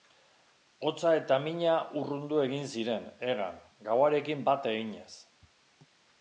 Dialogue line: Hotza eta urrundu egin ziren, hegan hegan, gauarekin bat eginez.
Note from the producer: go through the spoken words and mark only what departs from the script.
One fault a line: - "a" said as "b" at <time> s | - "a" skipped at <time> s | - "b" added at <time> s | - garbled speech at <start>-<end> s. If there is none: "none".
- "mina" added at 1.4 s
- "hegan" skipped at 3.6 s